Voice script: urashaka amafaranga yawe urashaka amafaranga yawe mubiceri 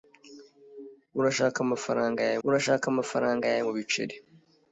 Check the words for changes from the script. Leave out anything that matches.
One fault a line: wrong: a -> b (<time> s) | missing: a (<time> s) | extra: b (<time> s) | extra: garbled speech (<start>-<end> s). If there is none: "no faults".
no faults